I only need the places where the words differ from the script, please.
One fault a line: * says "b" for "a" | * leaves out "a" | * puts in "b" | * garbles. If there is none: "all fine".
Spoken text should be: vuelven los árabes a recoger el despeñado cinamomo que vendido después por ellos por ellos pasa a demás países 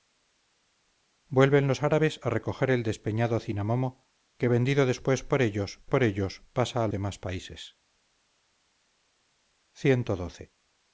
all fine